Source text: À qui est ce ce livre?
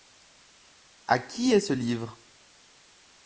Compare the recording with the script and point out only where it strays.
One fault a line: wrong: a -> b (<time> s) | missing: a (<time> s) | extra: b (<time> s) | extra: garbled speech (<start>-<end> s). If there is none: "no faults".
missing: ce (1.7 s)